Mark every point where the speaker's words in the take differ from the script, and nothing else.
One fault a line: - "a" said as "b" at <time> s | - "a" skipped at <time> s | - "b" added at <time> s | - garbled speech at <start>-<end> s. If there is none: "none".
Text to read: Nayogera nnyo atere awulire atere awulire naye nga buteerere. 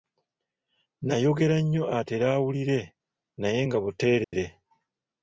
- "atere awulire" skipped at 2.8 s